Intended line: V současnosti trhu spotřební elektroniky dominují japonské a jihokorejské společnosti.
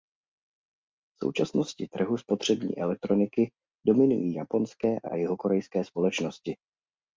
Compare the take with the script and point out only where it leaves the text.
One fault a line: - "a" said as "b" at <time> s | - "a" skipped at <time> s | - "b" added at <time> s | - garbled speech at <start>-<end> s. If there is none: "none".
- "a" added at 5.0 s